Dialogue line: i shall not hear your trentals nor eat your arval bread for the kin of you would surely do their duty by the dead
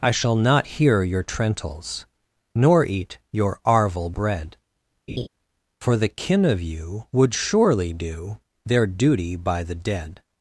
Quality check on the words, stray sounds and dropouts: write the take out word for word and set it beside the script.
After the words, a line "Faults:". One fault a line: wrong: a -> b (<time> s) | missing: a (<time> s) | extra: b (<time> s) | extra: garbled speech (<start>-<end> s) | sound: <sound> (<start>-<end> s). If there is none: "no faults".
i shall not hear your trentals nor eat your arval bread for the kin of you would surely do their duty by the dead
Faults:
sound: laugh (5.1-5.3 s)